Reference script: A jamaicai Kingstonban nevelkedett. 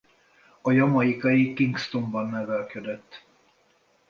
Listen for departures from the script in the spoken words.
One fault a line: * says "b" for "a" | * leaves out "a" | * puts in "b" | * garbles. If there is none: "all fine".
all fine